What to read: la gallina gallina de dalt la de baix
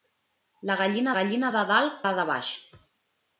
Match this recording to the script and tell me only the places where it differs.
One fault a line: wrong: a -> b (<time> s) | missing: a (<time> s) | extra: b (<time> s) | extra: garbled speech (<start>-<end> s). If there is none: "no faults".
no faults